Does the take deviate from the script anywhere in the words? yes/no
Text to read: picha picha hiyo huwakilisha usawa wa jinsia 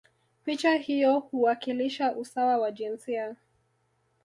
yes